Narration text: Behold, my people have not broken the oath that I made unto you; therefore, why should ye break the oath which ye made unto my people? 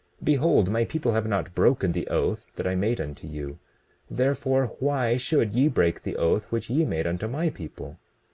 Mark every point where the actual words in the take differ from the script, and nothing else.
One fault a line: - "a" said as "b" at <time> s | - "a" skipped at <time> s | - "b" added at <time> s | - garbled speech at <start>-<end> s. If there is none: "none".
none